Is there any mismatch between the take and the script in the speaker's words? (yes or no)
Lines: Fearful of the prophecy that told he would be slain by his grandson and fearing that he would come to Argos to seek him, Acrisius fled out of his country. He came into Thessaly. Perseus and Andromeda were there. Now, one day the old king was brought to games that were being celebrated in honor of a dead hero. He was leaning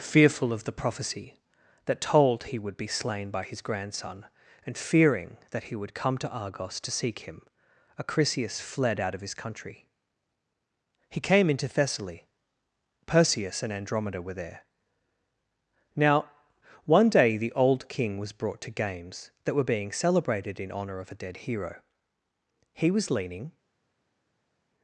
no